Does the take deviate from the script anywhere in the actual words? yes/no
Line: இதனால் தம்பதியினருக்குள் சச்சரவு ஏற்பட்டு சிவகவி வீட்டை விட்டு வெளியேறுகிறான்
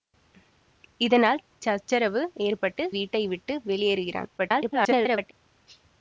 yes